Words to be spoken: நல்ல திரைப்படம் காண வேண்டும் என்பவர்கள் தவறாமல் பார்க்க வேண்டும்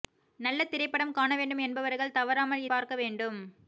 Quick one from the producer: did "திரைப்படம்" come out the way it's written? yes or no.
yes